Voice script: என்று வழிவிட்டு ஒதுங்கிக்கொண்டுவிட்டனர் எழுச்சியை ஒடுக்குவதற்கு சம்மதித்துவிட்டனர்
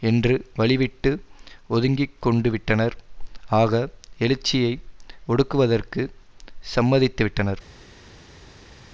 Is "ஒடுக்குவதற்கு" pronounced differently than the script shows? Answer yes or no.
no